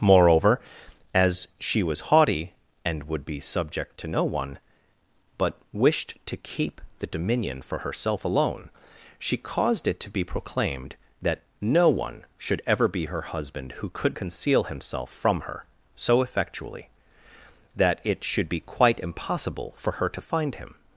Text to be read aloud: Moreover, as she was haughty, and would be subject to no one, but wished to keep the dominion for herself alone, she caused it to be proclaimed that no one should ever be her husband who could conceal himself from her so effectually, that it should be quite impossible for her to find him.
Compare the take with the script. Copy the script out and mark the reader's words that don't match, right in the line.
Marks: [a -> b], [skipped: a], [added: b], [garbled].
Moreover, as she was haughty, and would be subject to no one, but wished to keep the dominion for herself alone, she caused it to be proclaimed that no one should ever be her husband who could conceal himself from her so effectually, that it should be quite impossible for her to find him.